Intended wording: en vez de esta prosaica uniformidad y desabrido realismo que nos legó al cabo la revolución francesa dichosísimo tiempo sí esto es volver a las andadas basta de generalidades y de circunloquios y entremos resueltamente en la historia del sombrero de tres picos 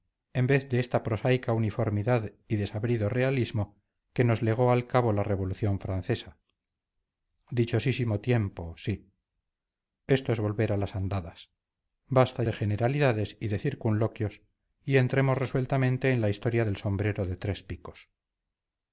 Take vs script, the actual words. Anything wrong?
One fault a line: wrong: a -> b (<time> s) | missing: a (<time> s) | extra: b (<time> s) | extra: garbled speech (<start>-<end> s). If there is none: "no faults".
no faults